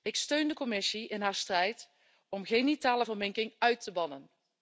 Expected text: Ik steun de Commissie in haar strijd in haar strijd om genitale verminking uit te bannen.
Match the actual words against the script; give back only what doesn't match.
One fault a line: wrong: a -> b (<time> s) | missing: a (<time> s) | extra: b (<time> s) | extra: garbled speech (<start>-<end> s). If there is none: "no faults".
missing: in haar strijd (1.9 s)